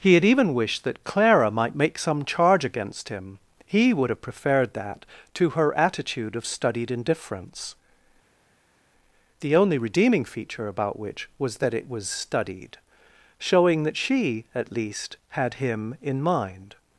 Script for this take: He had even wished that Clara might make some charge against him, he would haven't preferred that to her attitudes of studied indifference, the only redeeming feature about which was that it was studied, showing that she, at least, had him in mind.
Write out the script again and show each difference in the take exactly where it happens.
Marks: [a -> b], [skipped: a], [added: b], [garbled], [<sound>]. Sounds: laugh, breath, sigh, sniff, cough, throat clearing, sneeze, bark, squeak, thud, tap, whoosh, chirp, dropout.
He had even wished that Clara might make some charge against him, he would [haven't -> have] preferred that to her [attitudes -> attitude] of studied indifference, the only redeeming feature about which was that it was studied, showing that she, at least, had him in mind.